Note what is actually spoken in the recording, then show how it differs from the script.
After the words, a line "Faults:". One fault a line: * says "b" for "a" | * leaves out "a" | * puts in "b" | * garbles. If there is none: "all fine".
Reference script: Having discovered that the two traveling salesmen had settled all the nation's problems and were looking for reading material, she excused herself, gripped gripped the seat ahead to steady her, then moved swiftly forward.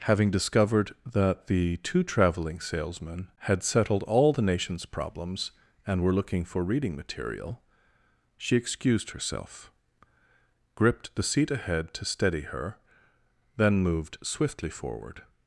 Having discovered that the two traveling salesmen had settled all the nation's problems and were looking for reading material, she excused herself, gripped the seat ahead to steady her, then moved swiftly forward.
Faults:
* leaves out "gripped"